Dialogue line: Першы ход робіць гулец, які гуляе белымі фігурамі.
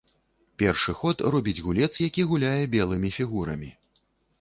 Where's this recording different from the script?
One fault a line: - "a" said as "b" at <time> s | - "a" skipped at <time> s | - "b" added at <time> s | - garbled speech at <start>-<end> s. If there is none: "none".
none